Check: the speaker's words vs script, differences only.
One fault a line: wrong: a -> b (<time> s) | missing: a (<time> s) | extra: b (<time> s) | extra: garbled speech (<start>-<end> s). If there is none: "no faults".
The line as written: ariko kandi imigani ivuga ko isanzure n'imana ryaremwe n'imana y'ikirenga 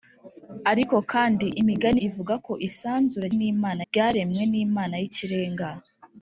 no faults